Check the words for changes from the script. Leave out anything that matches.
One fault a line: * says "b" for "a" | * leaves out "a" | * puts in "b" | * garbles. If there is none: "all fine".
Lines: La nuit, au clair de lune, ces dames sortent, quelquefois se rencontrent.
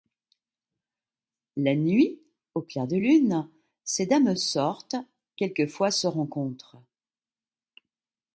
all fine